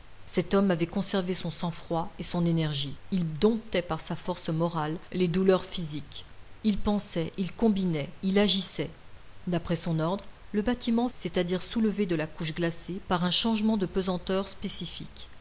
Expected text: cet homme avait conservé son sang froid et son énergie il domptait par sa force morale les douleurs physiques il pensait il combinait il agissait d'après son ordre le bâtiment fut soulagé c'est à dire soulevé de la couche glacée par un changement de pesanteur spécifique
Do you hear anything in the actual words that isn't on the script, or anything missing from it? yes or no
yes